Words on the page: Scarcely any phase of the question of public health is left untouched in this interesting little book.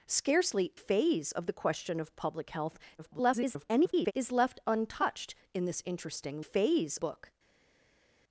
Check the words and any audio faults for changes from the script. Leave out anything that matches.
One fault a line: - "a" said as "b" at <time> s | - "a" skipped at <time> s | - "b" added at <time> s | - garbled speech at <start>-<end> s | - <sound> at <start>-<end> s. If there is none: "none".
- "any" skipped at 0.7 s
- garbled speech at 3.0-4.1 s
- "little" said as "phase" at 6.4 s